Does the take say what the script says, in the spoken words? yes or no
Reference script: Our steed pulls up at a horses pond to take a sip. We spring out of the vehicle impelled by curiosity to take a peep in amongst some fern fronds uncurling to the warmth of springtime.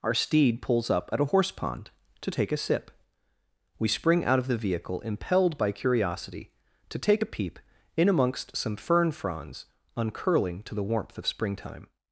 no